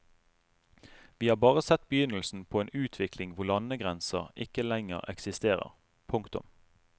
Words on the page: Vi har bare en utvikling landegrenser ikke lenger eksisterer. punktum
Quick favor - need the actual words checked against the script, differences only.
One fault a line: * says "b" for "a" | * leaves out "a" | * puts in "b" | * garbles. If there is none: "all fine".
* puts in "sett begynnelsen på"
* puts in "hvor"